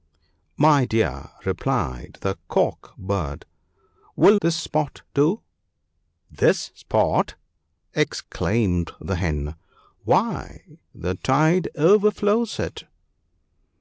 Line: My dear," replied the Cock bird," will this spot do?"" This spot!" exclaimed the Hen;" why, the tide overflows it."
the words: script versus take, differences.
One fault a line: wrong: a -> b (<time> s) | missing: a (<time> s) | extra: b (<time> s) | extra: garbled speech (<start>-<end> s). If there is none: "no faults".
no faults